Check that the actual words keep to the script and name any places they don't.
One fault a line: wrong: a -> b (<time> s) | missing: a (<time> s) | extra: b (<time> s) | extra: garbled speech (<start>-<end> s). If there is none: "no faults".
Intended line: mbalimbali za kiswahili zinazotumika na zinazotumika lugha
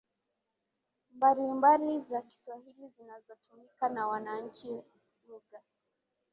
wrong: zinazotumika -> wananchi (4.1 s)